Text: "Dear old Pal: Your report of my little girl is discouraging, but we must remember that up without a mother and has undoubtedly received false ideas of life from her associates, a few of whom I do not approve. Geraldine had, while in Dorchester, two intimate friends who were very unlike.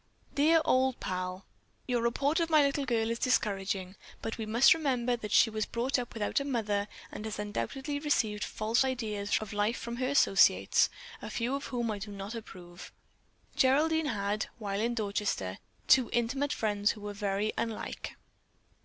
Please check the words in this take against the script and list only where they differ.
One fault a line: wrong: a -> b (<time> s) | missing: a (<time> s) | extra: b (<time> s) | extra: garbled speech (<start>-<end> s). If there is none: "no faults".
extra: she was brought (5.3 s)